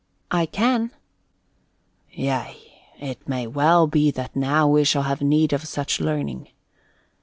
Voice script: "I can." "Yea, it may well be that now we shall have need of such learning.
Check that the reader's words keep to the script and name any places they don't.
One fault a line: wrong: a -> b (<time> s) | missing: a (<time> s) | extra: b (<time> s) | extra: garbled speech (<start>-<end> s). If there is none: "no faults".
no faults